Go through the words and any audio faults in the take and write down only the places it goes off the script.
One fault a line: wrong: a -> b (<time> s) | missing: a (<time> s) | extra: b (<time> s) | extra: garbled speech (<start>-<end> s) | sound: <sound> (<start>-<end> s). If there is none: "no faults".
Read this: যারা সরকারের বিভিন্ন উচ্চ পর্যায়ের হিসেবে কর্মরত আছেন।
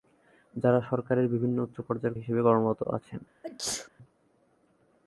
sound: sneeze (3.4-3.9 s)